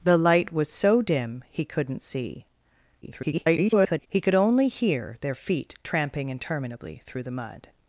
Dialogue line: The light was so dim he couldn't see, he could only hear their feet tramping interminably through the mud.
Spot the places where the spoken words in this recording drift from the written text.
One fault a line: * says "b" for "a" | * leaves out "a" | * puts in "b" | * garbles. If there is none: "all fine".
* garbles